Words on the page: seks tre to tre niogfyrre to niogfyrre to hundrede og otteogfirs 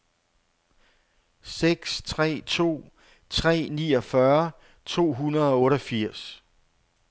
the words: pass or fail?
fail